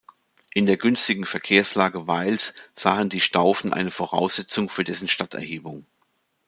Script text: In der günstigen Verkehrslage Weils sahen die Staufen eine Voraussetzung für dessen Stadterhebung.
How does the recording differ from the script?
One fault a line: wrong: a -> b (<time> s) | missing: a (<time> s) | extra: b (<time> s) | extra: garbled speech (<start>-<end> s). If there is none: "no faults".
no faults